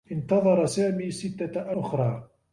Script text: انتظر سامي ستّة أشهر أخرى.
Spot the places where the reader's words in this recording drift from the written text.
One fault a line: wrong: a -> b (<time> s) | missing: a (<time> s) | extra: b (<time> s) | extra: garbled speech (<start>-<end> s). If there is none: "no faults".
missing: أشهر (1.7 s)